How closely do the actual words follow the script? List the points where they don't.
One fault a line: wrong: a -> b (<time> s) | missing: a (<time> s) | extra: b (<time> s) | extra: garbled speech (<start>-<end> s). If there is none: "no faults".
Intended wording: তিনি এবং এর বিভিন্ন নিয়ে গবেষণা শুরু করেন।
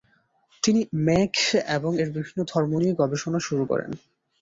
extra: মেঘ (1.1 s)
extra: ধর্ম (2.5 s)